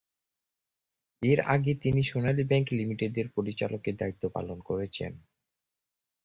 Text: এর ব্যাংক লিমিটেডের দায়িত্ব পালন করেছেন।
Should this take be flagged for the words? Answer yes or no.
yes